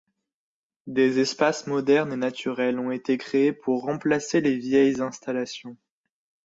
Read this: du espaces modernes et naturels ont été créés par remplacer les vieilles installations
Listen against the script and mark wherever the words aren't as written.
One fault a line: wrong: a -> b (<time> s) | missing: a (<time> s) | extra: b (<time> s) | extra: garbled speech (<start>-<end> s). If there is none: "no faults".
wrong: du -> des (0.9 s)
wrong: par -> pour (3.5 s)